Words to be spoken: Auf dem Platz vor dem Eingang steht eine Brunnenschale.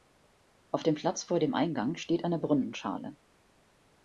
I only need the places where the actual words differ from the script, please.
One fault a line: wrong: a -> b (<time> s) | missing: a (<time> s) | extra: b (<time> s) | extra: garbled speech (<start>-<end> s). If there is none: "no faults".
no faults